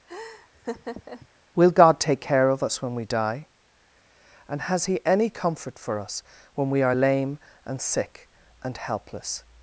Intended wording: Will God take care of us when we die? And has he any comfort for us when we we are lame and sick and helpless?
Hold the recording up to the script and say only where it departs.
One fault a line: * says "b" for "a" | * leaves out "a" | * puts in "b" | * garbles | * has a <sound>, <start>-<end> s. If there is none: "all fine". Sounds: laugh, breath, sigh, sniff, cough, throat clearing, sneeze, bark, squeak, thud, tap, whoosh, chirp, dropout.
* has a laugh, 0.1-1.3 s
* leaves out "we"